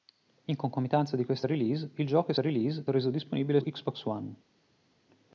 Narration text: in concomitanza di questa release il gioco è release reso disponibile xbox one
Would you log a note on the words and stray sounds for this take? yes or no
no